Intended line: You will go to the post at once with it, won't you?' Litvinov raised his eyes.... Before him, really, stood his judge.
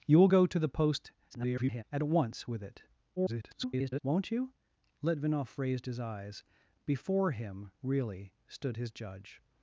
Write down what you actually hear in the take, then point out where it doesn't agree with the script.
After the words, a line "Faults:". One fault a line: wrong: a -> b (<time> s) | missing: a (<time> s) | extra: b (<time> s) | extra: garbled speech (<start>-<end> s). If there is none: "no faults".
You will go to the post [garbled] at once with it, [garbled] won't you?' Litvinov raised his eyes.... Before him, really, stood his judge.
Faults:
extra: garbled speech (1.3-1.8 s)
extra: garbled speech (3.2-4.0 s)